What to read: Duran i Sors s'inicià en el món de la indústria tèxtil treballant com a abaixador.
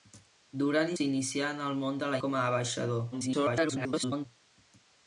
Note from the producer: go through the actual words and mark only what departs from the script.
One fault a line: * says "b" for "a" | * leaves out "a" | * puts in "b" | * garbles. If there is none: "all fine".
* leaves out "Sors"
* leaves out "indústria tèxtil treballant"
* garbles